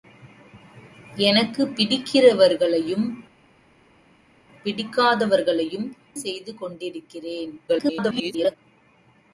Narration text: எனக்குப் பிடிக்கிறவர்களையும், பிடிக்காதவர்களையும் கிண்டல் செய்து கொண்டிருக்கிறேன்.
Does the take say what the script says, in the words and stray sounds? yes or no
no